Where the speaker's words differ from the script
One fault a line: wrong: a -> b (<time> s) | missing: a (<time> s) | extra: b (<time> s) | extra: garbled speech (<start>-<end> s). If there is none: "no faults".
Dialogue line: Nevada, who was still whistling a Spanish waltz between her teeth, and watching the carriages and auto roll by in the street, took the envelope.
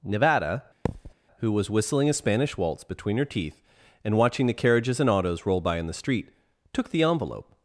missing: still (1.7 s)
wrong: auto -> autos (5.1 s)